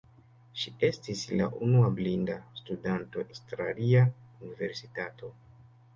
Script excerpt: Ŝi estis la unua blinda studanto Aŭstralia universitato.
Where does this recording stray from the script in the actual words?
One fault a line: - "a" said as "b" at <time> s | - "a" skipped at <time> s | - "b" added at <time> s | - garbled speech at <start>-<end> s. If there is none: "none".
none